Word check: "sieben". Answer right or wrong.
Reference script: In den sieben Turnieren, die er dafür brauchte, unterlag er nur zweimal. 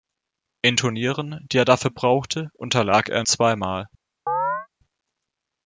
wrong